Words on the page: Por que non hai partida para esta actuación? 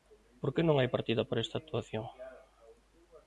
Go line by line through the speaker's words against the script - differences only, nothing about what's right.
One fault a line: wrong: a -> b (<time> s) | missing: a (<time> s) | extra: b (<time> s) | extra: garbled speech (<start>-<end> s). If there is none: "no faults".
no faults